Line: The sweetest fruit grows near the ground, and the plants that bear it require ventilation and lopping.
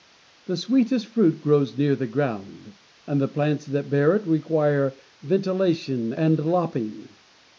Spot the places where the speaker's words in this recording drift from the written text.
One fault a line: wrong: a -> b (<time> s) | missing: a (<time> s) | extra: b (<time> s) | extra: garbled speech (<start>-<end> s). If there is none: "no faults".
no faults